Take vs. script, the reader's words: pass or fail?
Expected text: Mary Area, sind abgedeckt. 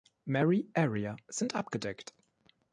pass